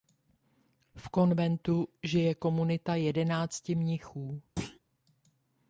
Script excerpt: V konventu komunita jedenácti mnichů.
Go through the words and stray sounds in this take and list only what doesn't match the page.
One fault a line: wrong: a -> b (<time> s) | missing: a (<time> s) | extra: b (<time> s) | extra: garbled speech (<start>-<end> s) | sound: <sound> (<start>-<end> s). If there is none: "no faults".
extra: žije (2.0 s)
sound: thud (4.6-4.8 s)